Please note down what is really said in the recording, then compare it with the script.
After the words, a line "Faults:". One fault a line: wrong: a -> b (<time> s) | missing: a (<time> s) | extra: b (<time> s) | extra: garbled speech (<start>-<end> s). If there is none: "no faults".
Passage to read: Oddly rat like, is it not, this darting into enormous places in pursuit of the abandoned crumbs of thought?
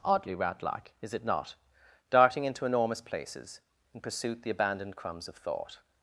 Oddly rat like, is it not, darting into enormous places in pursuit the abandoned crumbs of thought?
Faults:
missing: this (1.6 s)
missing: of (4.4 s)